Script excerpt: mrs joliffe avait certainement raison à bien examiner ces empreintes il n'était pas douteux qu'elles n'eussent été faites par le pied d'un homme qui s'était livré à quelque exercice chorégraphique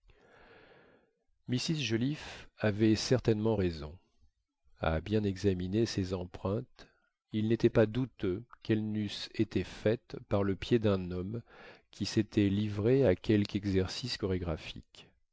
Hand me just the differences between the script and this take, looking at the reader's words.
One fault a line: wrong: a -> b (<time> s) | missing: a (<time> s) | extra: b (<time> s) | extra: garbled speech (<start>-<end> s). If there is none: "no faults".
no faults